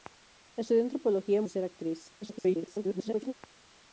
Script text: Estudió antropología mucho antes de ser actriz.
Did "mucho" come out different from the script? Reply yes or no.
yes